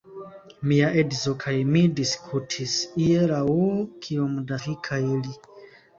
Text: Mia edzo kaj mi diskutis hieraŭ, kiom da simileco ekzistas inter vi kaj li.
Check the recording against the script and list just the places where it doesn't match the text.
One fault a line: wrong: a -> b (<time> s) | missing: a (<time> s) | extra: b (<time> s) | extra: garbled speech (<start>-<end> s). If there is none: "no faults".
missing: simileco ekzistas inter (4.6 s)